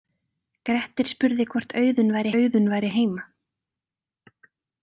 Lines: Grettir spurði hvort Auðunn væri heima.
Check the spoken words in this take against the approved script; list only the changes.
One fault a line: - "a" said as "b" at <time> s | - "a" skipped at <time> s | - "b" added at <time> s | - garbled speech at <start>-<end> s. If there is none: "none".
- "Auðunn væri" added at 2.4 s